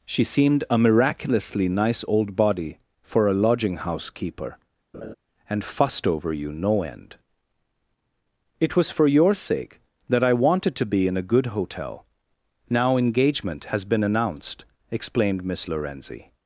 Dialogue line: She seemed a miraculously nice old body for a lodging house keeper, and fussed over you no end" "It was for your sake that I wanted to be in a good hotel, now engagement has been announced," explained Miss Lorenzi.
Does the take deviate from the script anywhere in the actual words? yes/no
no